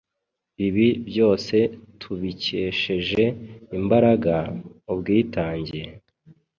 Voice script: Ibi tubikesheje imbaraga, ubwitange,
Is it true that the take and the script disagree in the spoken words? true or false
true